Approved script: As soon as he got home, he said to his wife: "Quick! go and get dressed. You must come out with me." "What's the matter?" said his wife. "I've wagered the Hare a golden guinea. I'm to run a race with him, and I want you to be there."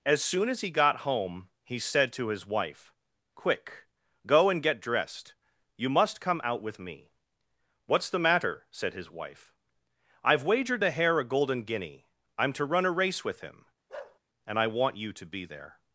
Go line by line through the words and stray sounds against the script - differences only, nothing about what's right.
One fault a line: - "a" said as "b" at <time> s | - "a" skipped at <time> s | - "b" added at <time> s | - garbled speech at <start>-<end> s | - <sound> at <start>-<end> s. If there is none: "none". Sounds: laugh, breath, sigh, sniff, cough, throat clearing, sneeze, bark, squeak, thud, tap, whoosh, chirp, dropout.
- bark at 13.9-14.2 s